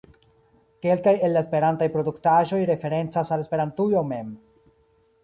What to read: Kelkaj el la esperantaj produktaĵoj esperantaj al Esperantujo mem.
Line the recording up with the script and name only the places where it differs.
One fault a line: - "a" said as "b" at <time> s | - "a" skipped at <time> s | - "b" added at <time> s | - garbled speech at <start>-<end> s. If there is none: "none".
- "esperantaj" said as "referencas" at 2.7 s